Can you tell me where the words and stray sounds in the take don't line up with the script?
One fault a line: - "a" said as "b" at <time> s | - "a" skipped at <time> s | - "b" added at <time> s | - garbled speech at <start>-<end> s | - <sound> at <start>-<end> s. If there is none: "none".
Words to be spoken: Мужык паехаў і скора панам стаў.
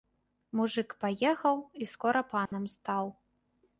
- dropout at 2.5-2.5 s